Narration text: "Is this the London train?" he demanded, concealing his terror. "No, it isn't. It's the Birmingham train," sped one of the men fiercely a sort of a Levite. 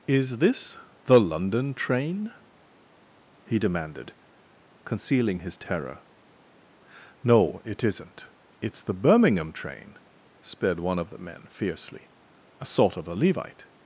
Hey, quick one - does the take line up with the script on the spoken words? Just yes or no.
yes